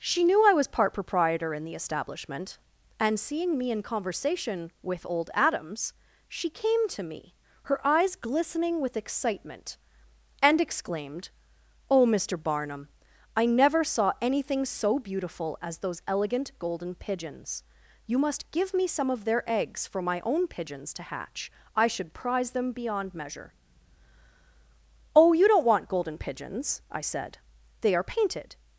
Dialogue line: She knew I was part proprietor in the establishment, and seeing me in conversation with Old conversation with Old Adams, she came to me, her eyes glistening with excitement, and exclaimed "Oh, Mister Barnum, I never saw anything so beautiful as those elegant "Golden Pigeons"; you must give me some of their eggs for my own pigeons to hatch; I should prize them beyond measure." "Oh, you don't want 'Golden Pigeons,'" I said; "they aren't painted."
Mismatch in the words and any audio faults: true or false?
true